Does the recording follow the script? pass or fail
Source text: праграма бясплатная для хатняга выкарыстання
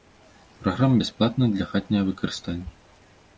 pass